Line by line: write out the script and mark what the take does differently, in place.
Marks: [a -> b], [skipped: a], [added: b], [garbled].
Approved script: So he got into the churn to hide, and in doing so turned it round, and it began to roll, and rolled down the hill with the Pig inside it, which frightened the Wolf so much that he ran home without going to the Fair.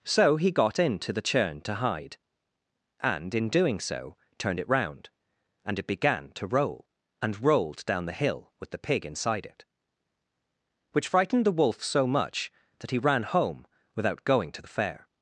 So he got into the churn to hide, and in doing so turned it round, and it began to roll, and rolled down the hill with the Pig inside it, which frightened the Wolf so much that he ran home without going to the Fair.